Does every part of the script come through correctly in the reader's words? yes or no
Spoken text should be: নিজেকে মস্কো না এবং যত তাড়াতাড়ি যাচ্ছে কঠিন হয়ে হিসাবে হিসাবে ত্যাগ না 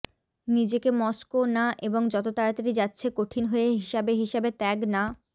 yes